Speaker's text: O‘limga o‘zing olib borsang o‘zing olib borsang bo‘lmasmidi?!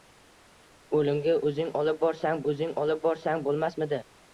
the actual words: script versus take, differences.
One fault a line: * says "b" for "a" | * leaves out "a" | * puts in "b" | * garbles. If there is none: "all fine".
all fine